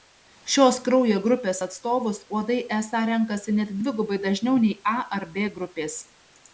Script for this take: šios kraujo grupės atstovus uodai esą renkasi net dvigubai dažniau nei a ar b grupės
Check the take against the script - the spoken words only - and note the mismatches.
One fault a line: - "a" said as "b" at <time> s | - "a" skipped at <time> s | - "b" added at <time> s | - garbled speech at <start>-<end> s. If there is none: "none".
none